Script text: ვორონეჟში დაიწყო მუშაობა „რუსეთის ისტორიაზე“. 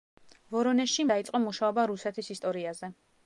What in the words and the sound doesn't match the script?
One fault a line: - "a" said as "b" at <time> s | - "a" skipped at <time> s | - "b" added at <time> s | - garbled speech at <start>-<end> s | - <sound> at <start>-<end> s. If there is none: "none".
none